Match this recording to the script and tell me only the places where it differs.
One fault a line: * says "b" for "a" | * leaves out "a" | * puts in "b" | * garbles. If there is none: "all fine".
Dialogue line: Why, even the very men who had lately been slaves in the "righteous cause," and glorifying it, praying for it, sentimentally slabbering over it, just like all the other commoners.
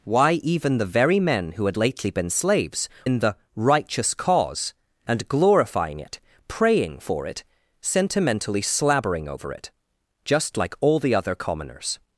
all fine